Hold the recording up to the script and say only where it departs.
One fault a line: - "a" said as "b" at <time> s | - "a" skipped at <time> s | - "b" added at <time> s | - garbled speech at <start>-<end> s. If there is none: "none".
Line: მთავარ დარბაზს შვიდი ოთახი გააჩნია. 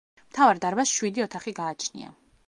none